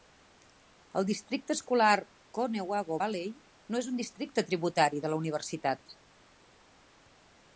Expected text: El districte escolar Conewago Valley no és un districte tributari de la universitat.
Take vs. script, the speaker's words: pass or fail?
pass